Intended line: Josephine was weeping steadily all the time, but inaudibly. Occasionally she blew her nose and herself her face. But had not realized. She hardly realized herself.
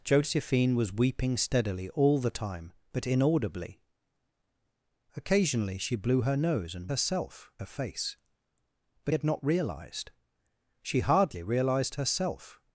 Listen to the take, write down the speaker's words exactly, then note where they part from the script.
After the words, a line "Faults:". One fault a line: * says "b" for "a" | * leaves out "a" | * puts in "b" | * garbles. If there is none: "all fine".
Josephine was weeping steadily all the time, but inaudibly. Occasionally she blew her nose and herself her face. But had not realized. She hardly realized herself.
Faults:
all fine